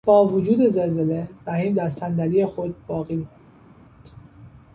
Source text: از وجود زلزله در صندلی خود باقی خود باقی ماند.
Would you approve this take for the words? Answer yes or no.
no